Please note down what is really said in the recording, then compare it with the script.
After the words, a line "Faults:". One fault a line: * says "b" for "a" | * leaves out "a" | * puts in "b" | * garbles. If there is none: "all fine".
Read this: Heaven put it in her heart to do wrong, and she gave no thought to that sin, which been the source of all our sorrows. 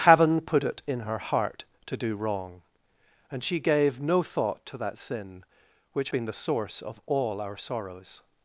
Heaven put it in her heart to do wrong, and she gave no thought to that sin, which been the source of all our sorrows.
Faults:
all fine